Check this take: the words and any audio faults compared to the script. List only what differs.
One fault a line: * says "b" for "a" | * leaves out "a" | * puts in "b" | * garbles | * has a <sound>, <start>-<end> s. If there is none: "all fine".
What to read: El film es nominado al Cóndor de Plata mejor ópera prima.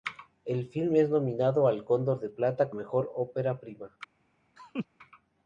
* has a laugh, 4.6-4.9 s